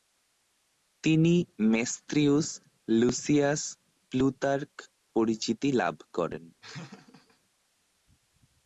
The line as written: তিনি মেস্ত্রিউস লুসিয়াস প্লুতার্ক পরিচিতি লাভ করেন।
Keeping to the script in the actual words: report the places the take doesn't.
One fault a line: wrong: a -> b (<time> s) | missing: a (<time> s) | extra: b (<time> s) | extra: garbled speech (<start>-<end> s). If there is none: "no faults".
no faults